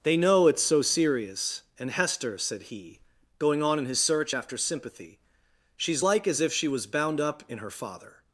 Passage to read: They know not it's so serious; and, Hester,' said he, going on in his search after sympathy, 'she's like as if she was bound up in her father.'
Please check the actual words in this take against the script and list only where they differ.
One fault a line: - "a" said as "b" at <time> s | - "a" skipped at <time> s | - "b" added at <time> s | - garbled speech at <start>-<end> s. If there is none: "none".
- "not" skipped at 0.5 s